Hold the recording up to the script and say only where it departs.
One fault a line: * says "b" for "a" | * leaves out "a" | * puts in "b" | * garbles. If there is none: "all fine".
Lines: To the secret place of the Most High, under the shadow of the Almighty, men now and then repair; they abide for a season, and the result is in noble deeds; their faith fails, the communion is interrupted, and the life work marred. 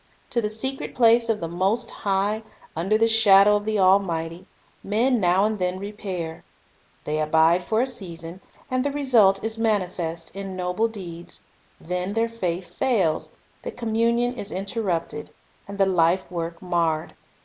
* puts in "manifest"
* puts in "then"